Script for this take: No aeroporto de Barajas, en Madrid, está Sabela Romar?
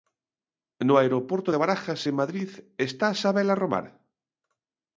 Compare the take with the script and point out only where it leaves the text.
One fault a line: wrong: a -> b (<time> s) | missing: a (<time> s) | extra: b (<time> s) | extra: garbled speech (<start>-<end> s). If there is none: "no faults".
no faults